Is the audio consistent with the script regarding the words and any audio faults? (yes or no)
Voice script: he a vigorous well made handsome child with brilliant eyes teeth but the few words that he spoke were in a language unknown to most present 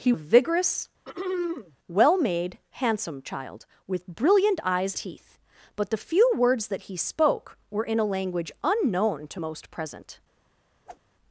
no